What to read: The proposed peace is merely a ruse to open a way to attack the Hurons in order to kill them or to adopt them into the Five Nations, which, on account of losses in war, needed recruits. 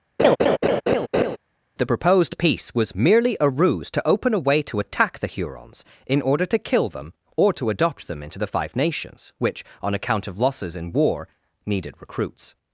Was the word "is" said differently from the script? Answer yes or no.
yes